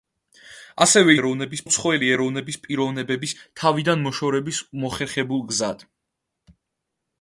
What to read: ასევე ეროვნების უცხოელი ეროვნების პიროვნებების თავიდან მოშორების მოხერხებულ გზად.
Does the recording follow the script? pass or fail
pass